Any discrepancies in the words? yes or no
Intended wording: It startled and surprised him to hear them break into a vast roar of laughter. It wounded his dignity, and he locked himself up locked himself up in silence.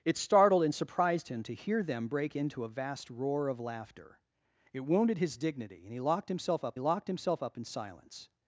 no